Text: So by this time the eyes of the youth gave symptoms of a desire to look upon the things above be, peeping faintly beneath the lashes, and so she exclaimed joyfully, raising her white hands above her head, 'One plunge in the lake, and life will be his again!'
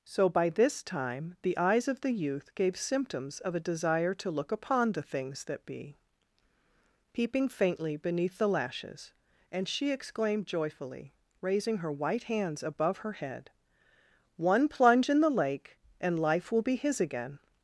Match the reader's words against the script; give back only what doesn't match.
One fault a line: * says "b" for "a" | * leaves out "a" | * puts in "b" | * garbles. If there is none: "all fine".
* says "that" for "above"
* leaves out "so"